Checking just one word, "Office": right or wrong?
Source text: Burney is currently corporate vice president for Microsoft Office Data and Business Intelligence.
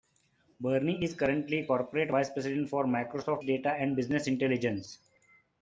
wrong